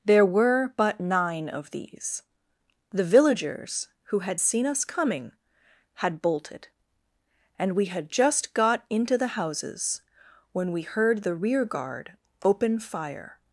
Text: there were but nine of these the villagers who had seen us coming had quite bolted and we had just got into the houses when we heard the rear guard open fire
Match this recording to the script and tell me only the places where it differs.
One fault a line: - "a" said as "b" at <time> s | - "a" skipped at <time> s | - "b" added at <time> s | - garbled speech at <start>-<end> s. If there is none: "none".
- "quite" skipped at 6.2 s